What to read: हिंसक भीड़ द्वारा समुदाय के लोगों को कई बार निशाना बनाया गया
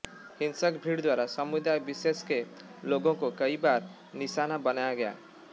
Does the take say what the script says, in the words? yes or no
no